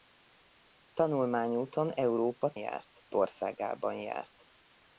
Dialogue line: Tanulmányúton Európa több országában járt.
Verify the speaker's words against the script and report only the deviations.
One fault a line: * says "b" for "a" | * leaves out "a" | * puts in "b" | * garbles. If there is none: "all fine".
* says "járt" for "több"